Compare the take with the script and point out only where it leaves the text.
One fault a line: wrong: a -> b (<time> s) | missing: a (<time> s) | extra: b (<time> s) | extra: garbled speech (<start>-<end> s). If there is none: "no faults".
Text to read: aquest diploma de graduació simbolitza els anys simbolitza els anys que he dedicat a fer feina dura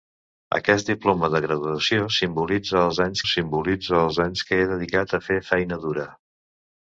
no faults